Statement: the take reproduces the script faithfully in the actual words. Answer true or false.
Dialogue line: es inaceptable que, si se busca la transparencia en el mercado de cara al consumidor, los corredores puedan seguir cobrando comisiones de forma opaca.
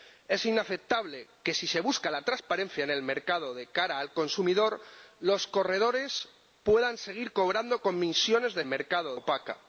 false